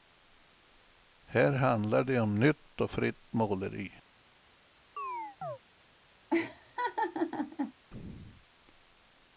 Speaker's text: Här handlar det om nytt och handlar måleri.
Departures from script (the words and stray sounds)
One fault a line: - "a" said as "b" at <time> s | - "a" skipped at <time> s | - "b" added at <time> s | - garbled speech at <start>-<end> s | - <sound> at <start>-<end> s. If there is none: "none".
- "handlar" said as "fritt" at 2.9 s
- chirp at 5.0-5.6 s
- laugh at 6.3-7.7 s